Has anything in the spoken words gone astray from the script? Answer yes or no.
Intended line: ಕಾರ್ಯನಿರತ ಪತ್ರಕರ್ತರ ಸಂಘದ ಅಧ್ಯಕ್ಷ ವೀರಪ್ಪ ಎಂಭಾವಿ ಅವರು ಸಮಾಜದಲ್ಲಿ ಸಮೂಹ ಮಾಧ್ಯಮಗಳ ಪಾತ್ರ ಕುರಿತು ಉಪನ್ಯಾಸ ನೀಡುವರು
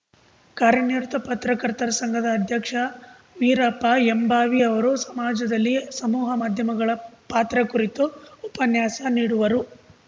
no